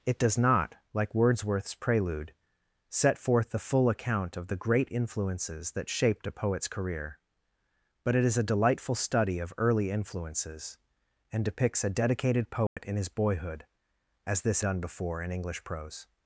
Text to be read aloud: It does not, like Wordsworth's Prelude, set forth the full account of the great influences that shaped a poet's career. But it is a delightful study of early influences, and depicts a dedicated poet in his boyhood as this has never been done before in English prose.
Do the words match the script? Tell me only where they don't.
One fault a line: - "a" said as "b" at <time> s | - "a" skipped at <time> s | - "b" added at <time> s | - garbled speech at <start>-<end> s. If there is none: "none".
- "has never been" skipped at 14.6 s